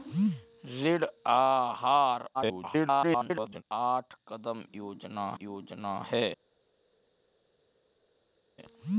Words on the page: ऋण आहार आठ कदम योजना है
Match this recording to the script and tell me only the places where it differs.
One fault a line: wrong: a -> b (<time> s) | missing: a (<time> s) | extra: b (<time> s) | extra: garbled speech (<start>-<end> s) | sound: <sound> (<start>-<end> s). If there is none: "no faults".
extra: garbled speech (2.3-3.6 s)
extra: योजना (5.4 s)